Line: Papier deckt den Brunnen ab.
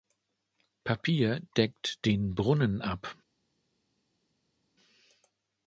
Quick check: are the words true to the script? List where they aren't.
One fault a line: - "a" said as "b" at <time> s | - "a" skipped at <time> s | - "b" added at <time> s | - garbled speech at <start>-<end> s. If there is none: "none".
none